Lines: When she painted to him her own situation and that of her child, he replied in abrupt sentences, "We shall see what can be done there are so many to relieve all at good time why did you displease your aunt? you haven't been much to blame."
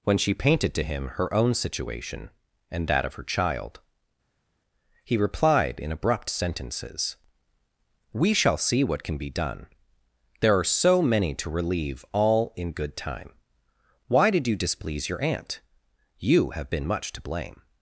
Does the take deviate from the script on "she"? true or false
false